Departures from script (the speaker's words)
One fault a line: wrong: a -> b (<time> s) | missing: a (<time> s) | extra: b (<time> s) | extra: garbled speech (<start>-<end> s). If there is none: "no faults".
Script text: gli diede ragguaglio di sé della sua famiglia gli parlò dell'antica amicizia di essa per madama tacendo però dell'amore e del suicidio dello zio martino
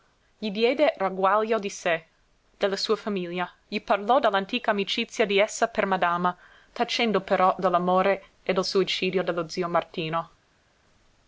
no faults